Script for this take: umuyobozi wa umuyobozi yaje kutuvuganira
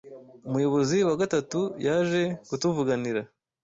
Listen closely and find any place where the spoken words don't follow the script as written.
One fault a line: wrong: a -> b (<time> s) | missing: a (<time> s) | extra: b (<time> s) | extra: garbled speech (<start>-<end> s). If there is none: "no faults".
wrong: umuyobozi -> gatatu (1.2 s)